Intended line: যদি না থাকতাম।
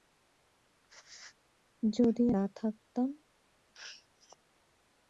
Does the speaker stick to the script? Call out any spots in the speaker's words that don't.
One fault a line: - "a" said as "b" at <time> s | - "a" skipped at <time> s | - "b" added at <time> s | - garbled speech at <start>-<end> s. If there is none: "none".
none